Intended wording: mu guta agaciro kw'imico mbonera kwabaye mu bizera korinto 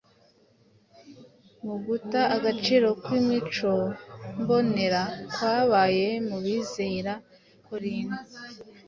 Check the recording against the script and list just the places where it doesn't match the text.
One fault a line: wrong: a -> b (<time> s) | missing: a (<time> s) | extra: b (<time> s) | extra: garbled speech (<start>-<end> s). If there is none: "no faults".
no faults